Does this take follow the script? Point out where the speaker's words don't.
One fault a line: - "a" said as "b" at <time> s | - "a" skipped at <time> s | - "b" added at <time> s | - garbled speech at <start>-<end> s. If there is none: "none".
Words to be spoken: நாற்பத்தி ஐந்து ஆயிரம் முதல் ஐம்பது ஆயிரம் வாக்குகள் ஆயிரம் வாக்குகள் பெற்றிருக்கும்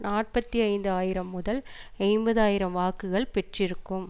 - "ஆயிரம் வாக்குகள்" skipped at 3.3 s